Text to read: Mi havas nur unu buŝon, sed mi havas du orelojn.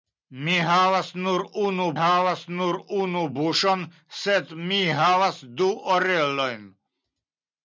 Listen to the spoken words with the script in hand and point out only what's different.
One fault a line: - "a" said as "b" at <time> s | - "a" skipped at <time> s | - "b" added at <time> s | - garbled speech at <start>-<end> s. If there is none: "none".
- "havas nur unu" added at 2.0 s